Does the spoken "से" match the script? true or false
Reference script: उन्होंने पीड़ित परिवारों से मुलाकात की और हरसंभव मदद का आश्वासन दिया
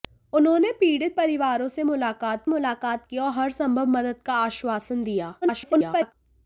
true